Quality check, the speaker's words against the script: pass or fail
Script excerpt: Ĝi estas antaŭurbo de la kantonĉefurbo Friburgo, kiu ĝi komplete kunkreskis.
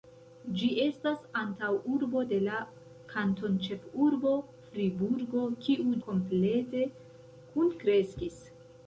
fail